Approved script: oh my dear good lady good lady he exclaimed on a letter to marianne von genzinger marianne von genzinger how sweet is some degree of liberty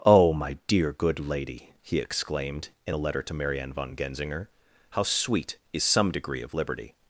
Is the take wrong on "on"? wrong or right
wrong